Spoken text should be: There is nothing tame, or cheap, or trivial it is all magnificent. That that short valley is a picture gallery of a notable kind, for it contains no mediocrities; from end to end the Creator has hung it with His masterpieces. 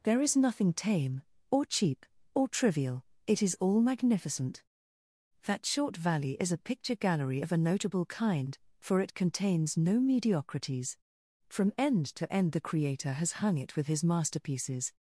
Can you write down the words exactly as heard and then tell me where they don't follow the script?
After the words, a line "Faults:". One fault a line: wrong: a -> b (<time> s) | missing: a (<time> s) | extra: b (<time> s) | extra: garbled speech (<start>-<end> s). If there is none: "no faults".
There is nothing tame, or cheap, or trivial it is all magnificent. That short valley is a picture gallery of a notable kind, for it contains no mediocrities; from end to end the Creator has hung it with His masterpieces.
Faults:
missing: that (5.7 s)